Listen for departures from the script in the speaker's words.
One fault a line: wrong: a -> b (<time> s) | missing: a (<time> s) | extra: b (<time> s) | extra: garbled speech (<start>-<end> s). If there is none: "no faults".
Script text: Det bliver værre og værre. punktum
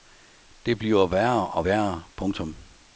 no faults